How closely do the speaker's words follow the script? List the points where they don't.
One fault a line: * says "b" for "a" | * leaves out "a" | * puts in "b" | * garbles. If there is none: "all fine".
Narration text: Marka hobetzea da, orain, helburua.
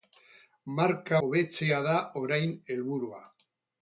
all fine